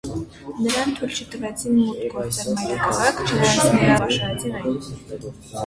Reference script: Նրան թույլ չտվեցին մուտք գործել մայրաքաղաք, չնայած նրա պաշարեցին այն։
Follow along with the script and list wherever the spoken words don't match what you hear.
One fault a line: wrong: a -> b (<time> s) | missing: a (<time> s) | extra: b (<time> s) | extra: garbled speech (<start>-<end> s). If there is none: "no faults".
no faults